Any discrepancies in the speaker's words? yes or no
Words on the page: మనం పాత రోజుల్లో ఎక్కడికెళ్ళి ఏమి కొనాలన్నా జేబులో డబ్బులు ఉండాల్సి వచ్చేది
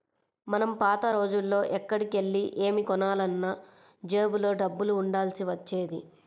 no